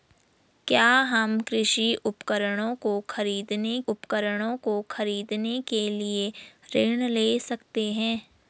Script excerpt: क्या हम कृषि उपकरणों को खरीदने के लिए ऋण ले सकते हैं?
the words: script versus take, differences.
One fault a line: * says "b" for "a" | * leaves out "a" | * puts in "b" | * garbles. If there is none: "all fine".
* puts in "उपकरणों को खरीदने"